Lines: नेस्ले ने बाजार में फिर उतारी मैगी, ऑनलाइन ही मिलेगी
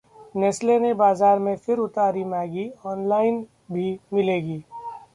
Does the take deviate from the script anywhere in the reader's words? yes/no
yes